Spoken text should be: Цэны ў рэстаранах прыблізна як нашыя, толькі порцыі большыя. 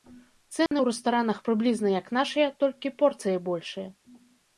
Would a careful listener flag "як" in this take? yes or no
no